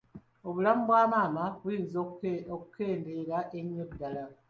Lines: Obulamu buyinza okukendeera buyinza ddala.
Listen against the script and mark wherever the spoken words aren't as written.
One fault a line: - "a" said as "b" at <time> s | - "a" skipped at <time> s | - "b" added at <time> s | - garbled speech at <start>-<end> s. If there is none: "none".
- "bwa maama" added at 0.9 s
- "buyinza" said as "ennyo" at 3.6 s